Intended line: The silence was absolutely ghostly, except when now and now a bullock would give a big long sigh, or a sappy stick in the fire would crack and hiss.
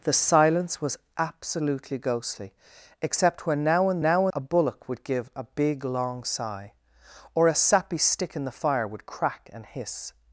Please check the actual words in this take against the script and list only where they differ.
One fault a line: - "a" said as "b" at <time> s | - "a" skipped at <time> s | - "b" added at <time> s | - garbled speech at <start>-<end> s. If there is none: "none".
none